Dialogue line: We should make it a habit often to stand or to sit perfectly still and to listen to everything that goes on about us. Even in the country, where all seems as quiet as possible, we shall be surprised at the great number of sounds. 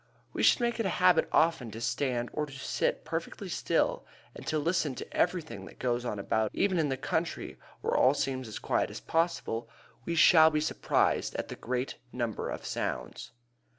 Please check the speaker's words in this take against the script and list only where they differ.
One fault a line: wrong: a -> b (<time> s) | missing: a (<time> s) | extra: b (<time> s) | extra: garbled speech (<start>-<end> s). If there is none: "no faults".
missing: us (6.5 s)